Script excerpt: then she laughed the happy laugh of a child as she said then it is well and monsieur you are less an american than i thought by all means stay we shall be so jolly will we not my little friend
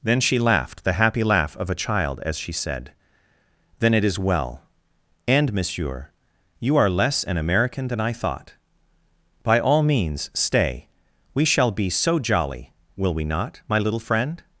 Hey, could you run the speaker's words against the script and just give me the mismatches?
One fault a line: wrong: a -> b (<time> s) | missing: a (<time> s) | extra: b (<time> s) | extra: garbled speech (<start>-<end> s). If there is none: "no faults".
no faults